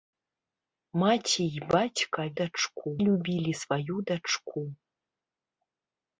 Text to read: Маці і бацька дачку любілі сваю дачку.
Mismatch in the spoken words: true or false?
false